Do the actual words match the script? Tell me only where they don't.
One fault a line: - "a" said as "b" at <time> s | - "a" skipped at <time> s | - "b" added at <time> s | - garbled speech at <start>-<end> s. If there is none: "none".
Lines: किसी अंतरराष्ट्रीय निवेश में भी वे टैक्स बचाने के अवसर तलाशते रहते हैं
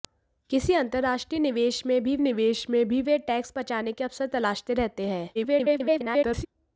- "निवेश में भी" added at 2.2 s
- garbled speech at 5.3-6.5 s